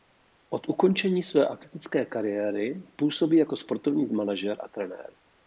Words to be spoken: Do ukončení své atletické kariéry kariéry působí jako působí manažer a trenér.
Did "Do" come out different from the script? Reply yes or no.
yes